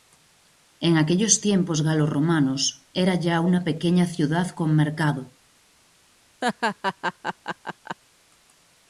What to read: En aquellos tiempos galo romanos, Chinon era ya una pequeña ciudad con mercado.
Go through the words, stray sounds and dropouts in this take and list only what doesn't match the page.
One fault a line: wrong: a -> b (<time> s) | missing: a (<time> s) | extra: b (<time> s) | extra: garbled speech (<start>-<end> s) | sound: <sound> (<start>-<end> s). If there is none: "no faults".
missing: Chinon (2.9 s)
sound: laugh (6.4-8.0 s)